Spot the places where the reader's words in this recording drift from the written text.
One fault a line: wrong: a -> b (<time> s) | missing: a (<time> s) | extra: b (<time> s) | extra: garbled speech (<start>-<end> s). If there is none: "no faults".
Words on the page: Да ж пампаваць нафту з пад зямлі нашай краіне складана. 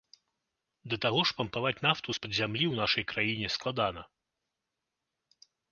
extra: таго (1.1 s)
extra: ў (2.7 s)